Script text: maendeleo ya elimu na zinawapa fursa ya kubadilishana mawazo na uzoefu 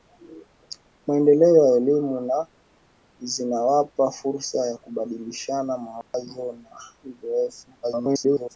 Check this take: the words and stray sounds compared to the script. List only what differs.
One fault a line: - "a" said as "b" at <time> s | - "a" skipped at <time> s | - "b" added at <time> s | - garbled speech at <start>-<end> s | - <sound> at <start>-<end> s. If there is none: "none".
- dropout at 6.0-6.1 s
- garbled speech at 7.8-8.6 s